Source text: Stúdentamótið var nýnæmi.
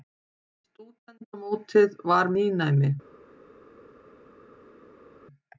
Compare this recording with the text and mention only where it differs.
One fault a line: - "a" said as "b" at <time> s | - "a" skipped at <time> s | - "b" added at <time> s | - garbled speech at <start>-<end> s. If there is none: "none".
none